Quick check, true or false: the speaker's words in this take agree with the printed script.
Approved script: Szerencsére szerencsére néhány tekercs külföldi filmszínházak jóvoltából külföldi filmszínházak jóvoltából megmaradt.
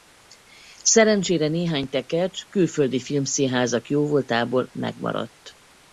false